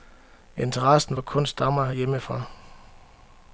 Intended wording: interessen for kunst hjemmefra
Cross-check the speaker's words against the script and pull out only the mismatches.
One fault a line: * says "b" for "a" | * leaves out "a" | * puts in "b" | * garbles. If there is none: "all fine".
* puts in "stammer"